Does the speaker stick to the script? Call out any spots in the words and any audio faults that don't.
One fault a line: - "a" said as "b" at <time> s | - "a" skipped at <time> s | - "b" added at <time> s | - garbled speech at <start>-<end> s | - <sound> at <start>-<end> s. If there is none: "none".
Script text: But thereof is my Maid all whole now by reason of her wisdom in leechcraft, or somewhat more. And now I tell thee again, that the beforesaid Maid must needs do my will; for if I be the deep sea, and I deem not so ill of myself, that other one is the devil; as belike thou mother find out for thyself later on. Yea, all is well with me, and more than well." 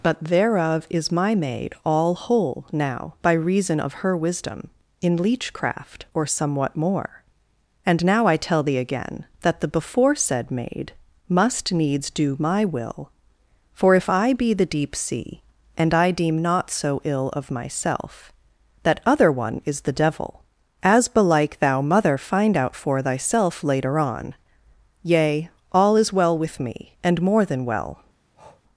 - breath at 28.3-28.6 s